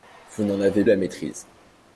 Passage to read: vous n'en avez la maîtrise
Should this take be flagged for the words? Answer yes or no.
no